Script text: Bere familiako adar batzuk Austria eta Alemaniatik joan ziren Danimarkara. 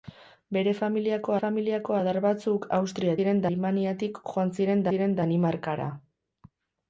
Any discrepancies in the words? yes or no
yes